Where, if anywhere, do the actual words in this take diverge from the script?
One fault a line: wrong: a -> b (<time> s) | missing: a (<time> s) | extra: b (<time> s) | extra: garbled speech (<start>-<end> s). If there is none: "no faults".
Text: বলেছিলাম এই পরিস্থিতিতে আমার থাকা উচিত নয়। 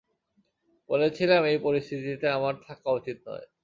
no faults